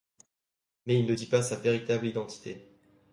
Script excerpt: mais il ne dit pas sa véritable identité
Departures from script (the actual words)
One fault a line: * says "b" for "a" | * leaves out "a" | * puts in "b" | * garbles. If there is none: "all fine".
all fine